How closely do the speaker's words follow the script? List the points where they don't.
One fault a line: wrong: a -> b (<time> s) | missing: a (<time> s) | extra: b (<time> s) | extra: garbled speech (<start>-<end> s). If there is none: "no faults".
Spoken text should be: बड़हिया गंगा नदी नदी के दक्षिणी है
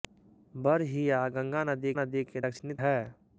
no faults